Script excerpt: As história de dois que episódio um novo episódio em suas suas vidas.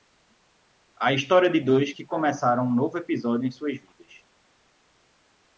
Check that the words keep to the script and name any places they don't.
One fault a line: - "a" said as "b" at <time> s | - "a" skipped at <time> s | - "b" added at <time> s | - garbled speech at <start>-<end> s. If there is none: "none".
- "As" said as "A" at 1.0 s
- "episódio" said as "começaram" at 2.1 s
- "suas" skipped at 3.8 s